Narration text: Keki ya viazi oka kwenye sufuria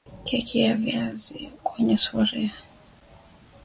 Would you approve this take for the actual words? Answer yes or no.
no